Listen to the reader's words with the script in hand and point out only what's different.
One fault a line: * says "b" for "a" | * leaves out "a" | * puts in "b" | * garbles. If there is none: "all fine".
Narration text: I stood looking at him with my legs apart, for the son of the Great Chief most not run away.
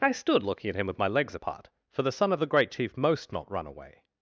all fine